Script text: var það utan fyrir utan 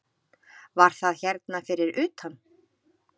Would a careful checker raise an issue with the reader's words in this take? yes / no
yes